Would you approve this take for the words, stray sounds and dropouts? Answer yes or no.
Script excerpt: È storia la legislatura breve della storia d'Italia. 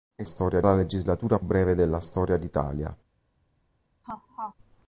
no